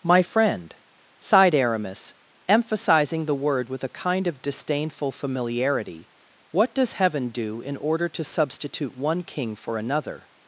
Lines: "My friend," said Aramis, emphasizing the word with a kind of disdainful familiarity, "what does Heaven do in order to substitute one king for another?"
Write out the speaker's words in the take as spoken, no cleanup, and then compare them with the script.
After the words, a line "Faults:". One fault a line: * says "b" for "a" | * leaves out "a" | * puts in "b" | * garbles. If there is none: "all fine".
"My friend," sighed Aramis, emphasizing the word with a kind of disdainful familiarity, "what does Heaven do in order to substitute one king for another?"
Faults:
* says "sighed" for "said"